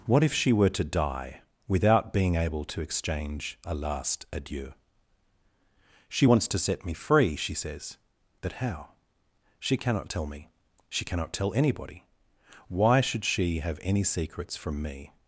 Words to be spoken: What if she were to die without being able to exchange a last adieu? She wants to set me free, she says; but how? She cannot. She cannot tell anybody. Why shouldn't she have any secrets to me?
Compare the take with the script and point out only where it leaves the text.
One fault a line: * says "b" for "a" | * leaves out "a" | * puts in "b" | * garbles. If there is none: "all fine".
* puts in "tell me"
* says "should" for "shouldn't"
* says "from" for "to"